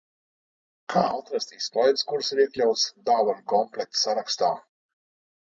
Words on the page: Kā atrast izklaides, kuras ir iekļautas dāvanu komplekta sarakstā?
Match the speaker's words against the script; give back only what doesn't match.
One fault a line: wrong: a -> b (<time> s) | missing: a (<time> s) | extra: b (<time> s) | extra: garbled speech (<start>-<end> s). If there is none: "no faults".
no faults